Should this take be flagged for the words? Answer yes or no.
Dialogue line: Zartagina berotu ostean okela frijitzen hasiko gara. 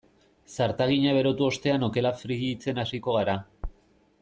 no